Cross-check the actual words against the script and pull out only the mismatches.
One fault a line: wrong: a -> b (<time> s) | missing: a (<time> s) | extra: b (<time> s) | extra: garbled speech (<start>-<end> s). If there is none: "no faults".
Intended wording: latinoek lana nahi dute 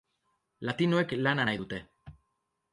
no faults